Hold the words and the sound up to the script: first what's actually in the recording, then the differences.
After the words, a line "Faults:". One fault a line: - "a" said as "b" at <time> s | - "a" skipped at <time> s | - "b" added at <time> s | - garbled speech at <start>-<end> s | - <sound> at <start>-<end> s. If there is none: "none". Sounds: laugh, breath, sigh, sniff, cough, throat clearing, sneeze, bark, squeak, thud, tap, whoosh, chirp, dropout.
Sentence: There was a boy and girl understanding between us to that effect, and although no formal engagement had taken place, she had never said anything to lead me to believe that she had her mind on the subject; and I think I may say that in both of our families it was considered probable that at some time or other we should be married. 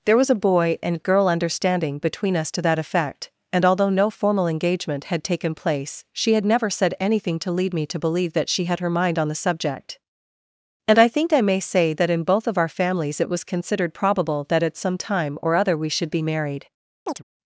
There was a boy and girl understanding between us to that effect, and although no formal engagement had taken place, she had never said anything to lead me to believe that she had her mind on the subject; and I think I may say that in both of our families it was considered probable that at some time or other we should be married.
Faults:
- chirp at 17.1-17.2 s